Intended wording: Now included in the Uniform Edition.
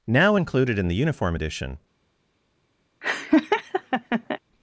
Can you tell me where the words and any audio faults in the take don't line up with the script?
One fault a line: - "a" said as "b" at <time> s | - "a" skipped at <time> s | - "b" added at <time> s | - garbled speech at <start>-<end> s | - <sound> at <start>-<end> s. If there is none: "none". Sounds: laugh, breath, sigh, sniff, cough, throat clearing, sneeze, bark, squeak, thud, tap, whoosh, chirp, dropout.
- laugh at 3.0-4.4 s